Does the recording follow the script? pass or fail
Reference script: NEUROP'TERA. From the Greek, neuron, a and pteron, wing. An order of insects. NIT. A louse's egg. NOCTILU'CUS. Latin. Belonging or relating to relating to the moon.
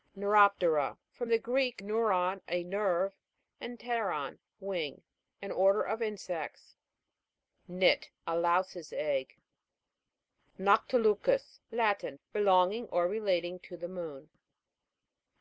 fail